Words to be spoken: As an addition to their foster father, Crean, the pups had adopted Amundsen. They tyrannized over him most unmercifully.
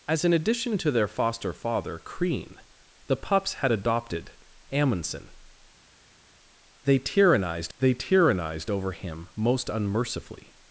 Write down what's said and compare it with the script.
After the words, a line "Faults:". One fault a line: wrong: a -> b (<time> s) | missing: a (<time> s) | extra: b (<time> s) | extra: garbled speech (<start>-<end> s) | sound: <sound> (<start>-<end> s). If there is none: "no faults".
As an addition to their foster father, Crean, the pups had adopted Amundsen. They tyrannized they tyrannized over him most unmercifully.
Faults:
extra: they tyrannized (7.8 s)